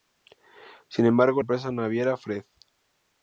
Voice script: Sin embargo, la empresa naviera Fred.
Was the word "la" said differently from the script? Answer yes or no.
yes